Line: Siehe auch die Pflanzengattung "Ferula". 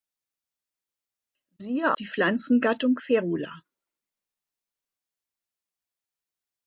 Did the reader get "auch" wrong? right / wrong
wrong